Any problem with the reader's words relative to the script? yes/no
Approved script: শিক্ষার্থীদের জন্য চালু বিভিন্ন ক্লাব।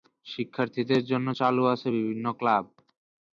yes